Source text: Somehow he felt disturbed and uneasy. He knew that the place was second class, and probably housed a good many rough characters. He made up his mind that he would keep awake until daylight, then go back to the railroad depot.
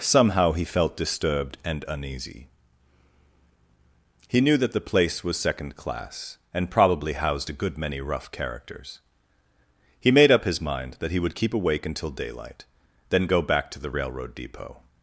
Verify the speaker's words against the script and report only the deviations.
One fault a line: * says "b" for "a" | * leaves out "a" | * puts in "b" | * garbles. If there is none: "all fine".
all fine